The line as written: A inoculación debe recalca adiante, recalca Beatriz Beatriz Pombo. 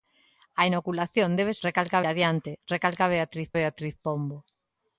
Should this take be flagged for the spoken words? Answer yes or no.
no